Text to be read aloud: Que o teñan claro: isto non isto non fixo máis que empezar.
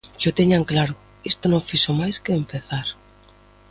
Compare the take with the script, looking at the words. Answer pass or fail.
fail